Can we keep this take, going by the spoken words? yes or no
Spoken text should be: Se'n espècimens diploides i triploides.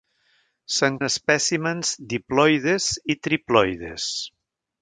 yes